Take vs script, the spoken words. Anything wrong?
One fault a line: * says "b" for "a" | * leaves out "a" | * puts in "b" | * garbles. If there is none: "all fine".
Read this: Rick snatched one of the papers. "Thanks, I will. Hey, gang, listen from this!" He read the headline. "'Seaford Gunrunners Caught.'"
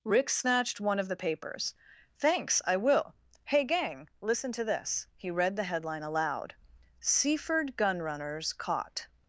* says "to" for "from"
* puts in "aloud"